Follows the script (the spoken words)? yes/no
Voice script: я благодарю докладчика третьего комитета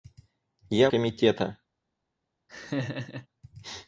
no